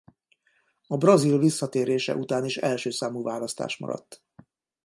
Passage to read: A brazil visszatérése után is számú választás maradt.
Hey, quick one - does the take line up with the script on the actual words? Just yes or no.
no